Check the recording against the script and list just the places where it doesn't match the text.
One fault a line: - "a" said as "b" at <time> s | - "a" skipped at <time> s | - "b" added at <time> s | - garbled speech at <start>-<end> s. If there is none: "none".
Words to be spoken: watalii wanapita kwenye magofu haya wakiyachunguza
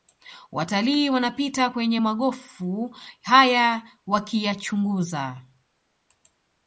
none